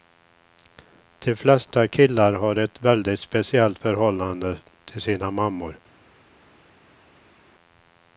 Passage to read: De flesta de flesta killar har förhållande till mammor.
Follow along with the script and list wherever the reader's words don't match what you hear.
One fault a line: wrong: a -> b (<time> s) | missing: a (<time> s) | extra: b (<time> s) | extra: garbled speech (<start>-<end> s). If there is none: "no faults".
wrong: de flesta killar har -> killar har ett väldigt speciellt (1.9 s)
extra: sina (5.0 s)